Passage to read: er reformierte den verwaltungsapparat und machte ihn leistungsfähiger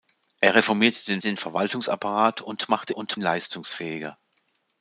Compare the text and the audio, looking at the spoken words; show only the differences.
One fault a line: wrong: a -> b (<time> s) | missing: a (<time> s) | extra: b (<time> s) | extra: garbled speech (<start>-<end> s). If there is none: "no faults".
extra: den (1.2 s)
wrong: ihn -> und (2.9 s)